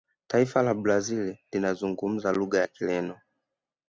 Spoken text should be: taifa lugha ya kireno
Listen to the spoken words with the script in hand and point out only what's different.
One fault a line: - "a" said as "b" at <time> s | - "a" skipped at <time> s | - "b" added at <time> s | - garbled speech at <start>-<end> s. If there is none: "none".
- "la brazil linazungumza" added at 0.6 s